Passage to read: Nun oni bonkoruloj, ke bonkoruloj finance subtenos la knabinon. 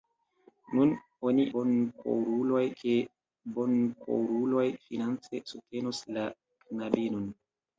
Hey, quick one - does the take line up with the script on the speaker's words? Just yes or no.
yes